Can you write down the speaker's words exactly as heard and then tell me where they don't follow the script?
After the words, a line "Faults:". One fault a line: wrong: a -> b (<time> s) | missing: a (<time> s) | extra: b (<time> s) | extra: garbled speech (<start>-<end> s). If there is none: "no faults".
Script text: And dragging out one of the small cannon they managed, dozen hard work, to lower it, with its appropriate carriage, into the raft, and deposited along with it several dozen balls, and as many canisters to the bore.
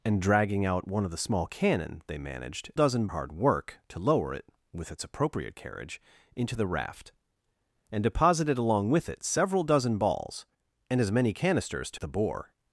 And dragging out one of the small cannon they managed, dozen hard work, to lower it, with its appropriate carriage, into the raft, and deposited along with it several dozen balls, and as many canisters to the bore.
Faults:
no faults